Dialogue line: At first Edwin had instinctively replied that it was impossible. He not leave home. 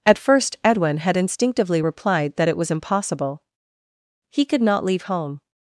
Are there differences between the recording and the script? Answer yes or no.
yes